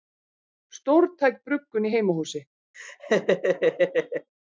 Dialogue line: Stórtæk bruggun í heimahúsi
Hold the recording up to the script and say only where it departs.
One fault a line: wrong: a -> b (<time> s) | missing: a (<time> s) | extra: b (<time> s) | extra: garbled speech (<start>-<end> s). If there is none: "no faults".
no faults